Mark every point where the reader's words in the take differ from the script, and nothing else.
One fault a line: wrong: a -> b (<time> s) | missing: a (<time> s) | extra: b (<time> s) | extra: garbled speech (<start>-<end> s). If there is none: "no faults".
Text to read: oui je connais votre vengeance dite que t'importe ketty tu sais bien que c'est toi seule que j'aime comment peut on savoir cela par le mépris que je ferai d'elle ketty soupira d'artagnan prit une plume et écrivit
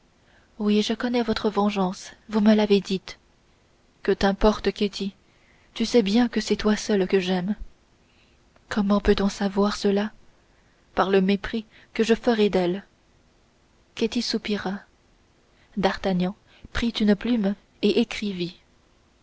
extra: vous me l'avez (2.3 s)